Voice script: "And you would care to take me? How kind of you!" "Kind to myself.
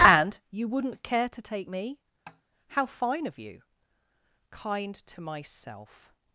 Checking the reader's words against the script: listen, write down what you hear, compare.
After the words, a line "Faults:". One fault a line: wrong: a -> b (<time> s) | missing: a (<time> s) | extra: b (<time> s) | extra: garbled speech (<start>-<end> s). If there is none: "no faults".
"And you wouldn't care to take me? How fine of you!" "Kind to myself.
Faults:
wrong: would -> wouldn't (0.7 s)
wrong: kind -> fine (2.9 s)